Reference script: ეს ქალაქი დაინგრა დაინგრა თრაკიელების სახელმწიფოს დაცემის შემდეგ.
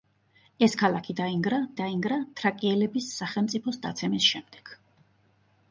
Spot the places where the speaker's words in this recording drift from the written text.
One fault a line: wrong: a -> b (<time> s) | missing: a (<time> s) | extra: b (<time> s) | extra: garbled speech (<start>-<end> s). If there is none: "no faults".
no faults